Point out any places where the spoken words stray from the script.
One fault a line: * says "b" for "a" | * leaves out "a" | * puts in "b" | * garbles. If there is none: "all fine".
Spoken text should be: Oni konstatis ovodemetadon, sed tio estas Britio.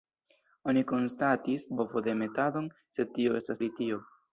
all fine